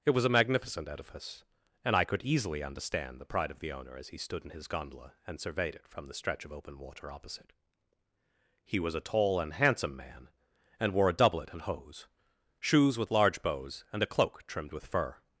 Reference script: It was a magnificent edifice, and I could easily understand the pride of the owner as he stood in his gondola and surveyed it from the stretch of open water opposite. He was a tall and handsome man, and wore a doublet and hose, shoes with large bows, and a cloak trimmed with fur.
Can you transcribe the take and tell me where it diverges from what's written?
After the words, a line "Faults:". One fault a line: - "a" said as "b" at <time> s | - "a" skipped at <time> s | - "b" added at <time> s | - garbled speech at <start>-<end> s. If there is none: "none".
It was a magnificent edifice, and I could easily understand the pride of the owner as he stood in his gondola and surveyed it from the stretch of open water opposite. He was a tall and handsome man, and wore a doublet and hose, shoes with large bows, and a cloak trimmed with fur.
Faults:
none